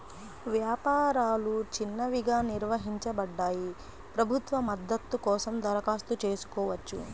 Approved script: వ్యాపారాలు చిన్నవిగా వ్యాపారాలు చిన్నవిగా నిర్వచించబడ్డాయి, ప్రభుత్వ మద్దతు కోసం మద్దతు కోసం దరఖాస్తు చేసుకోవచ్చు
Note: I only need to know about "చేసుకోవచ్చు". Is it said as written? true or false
true